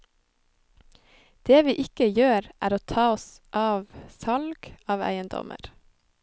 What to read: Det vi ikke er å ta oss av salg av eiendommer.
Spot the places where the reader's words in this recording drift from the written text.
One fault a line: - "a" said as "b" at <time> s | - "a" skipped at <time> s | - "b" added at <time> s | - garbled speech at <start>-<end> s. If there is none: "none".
- "gjør" added at 2.2 s